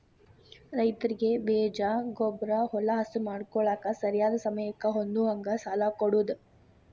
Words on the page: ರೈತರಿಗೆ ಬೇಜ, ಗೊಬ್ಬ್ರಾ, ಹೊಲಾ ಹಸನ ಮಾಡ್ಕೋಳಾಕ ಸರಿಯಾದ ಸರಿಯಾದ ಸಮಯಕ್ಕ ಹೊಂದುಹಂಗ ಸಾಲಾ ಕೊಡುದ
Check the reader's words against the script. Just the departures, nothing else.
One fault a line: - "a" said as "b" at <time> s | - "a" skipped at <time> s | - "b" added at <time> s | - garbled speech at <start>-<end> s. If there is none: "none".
- "ಸರಿಯಾದ" skipped at 4.4 s